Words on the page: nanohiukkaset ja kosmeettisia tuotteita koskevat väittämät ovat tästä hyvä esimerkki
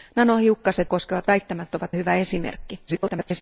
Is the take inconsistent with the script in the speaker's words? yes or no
yes